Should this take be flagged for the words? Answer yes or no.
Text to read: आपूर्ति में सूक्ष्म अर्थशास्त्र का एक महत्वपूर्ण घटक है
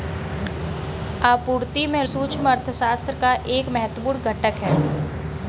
no